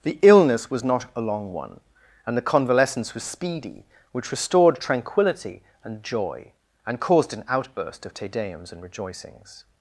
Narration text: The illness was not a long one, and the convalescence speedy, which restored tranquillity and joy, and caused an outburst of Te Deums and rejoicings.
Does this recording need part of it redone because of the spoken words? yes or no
yes